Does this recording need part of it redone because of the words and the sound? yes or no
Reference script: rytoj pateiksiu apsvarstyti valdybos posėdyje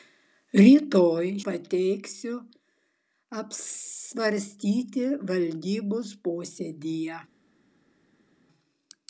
no